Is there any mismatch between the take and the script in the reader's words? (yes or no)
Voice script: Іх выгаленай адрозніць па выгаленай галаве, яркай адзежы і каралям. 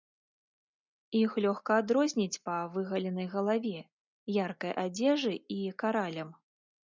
yes